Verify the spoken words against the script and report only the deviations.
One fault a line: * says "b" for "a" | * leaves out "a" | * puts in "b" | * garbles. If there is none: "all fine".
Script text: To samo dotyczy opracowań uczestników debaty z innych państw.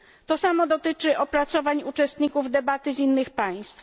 all fine